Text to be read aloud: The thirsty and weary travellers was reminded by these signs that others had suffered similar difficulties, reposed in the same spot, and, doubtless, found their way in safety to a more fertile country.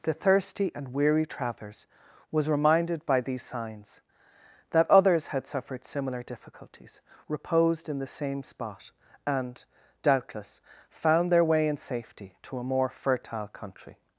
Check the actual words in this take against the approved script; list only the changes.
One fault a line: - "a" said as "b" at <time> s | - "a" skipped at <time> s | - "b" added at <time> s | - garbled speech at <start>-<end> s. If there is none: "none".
none